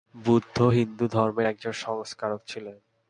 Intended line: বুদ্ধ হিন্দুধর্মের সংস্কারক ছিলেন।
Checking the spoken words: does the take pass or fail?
fail